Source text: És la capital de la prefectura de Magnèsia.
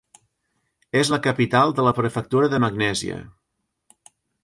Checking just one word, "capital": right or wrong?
right